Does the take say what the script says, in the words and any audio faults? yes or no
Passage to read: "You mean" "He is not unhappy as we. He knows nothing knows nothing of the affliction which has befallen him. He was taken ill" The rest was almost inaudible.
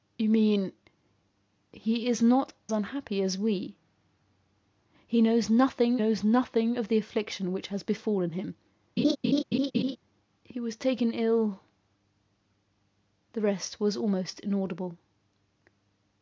no